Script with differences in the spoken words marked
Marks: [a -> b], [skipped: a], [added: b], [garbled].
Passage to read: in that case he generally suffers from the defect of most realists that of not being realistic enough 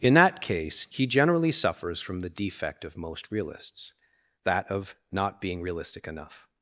in that case he generally suffers from the defect of most realists that of not being realistic enough